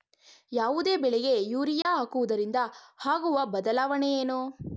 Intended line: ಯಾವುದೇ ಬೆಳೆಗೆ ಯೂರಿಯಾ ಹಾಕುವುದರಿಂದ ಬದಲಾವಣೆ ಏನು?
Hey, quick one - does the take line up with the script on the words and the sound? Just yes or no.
no